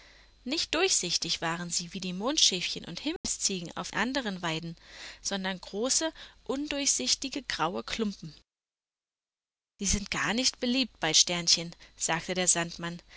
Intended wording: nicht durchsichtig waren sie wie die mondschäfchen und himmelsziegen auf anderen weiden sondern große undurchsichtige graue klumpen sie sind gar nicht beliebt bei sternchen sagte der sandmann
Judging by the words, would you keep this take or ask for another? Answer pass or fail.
pass